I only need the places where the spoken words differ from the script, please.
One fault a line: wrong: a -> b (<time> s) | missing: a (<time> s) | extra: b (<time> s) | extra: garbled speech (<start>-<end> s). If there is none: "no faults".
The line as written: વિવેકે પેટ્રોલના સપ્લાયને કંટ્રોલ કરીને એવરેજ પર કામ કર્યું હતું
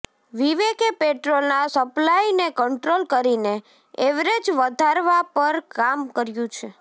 extra: વધારવા (4.6 s)
wrong: હતું -> છે (6.5 s)